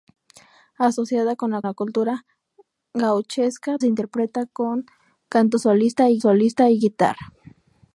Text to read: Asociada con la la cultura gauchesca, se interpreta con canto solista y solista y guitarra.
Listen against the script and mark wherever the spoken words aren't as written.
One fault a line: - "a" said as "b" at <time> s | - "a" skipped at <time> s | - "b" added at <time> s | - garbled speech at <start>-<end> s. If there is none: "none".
none